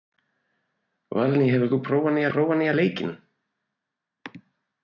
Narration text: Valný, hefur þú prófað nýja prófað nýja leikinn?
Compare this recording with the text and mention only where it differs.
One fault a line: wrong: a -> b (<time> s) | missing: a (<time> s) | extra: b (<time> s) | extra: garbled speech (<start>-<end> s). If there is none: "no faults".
no faults